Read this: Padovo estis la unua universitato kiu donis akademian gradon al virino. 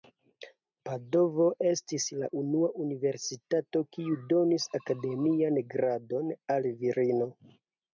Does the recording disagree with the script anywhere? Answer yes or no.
no